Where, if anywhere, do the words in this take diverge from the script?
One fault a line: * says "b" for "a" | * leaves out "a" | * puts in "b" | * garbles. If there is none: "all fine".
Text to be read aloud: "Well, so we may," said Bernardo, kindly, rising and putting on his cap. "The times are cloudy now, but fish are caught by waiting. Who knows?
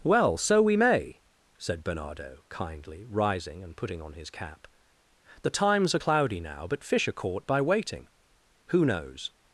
all fine